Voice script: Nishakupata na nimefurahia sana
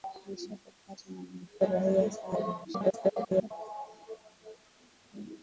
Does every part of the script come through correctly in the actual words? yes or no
no